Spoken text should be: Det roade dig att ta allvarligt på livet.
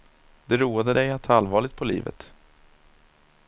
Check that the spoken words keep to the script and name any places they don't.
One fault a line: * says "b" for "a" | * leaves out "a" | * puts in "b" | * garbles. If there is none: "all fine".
all fine